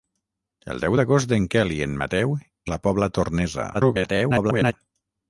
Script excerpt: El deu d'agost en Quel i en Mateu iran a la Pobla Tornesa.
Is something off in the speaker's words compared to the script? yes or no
yes